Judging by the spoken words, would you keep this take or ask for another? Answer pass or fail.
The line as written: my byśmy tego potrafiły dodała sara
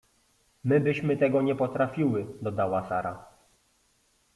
fail